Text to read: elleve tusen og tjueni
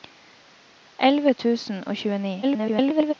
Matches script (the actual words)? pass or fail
fail